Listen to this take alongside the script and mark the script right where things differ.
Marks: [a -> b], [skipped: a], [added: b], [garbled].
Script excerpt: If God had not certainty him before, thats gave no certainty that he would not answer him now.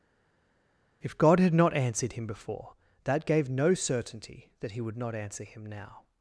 If God had not [certainty -> answered] him before, [thats -> that] gave no certainty that he would not answer him now.